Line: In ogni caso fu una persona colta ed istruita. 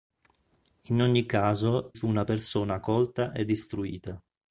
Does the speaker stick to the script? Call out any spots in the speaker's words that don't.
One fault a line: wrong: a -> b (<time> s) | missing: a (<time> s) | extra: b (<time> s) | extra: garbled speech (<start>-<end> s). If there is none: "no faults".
no faults